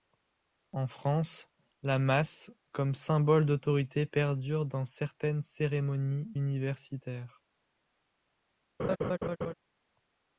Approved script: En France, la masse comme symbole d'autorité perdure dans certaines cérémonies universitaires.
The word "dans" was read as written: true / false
true